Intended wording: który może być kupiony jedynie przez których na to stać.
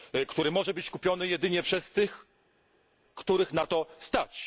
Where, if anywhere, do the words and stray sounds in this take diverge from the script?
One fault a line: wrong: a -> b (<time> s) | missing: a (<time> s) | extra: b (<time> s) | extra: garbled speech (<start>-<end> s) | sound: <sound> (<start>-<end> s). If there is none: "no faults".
extra: tych (1.9 s)